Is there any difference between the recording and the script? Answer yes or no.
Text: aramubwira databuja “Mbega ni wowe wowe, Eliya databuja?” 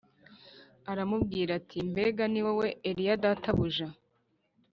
yes